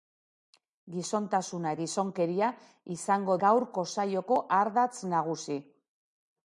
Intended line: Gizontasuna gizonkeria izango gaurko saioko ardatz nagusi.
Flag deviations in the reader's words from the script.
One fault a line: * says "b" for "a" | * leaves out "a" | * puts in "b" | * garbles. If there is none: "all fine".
all fine